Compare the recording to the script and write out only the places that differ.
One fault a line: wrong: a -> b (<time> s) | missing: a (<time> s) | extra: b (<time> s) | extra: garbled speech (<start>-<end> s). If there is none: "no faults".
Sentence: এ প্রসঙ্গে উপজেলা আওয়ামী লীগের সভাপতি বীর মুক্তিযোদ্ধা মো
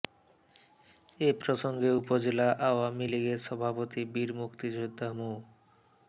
no faults